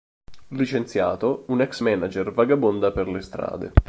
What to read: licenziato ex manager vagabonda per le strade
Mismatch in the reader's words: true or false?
true